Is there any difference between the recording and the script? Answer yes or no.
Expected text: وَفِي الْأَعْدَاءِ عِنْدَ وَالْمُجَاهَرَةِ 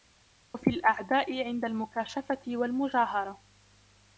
yes